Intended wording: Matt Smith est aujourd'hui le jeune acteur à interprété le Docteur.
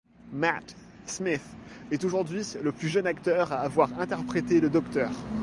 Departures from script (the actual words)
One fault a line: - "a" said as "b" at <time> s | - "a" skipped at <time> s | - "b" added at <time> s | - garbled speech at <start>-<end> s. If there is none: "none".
- "plus" added at 2.7 s
- "avoir" added at 3.6 s